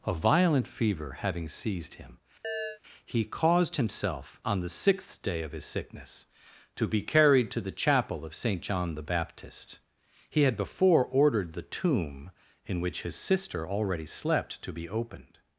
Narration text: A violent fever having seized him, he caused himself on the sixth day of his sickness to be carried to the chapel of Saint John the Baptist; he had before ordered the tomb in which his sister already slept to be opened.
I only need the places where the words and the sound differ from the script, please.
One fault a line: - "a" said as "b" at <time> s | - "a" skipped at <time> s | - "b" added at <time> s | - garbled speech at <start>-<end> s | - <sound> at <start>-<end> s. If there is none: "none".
- chirp at 2.4-2.8 s